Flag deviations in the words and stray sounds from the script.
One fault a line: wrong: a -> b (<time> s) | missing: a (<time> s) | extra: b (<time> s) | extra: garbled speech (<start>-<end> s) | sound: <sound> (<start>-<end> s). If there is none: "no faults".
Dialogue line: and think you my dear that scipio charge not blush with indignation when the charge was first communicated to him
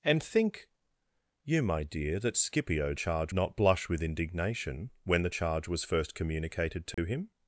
sound: dropout (6.9-7.0 s)